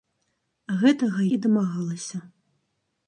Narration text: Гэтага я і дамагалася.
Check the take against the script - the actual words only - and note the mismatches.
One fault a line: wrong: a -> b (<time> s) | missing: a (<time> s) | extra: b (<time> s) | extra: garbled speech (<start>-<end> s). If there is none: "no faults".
missing: я (1.2 s)